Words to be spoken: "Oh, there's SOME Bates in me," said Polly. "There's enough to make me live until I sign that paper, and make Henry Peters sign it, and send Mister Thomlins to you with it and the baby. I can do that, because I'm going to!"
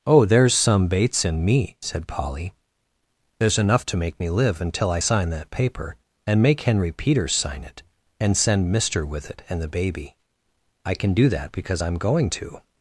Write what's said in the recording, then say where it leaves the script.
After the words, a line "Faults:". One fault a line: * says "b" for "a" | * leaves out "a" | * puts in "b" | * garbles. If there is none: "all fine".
"Oh, there's SOME Bates in me," said Polly. "There's enough to make me live until I sign that paper, and make Henry Peters sign it, and send Mister with it and the baby. I can do that, because I'm going to!"
Faults:
* leaves out "Thomlins to you"